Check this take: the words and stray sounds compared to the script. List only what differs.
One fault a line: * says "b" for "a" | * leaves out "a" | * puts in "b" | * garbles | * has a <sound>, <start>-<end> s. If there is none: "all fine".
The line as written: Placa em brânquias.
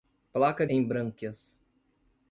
all fine